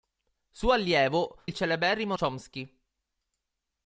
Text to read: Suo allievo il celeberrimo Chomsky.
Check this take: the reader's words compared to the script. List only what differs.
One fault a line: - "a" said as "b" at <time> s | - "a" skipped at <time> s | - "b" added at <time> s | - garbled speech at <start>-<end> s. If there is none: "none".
none